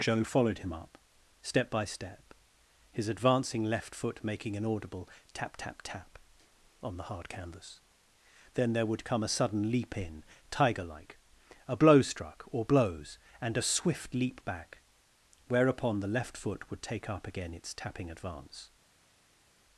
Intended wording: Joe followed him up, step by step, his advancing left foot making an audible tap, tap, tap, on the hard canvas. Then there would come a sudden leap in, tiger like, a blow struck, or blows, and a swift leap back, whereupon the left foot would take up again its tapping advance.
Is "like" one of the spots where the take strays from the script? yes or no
no